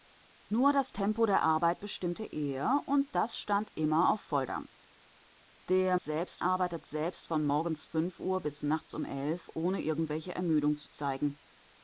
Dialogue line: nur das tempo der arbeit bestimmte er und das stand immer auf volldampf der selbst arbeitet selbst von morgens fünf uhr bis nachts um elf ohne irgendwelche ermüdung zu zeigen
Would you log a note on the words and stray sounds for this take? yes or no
no